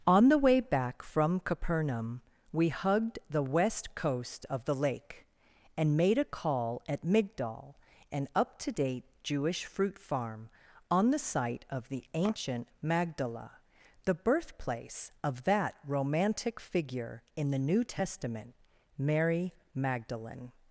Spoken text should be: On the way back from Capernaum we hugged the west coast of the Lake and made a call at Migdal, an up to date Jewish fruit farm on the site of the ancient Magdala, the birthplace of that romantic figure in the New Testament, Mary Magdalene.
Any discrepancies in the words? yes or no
no